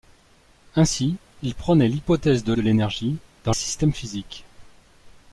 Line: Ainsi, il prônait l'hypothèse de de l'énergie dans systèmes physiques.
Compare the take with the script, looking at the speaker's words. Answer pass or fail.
pass